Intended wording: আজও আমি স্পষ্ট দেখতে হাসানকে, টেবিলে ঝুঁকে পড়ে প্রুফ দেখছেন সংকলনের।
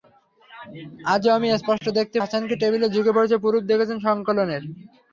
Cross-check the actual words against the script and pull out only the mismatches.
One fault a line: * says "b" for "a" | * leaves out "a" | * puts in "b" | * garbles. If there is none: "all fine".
all fine